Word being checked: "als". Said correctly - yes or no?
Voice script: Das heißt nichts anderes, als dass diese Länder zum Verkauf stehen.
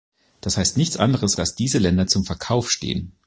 no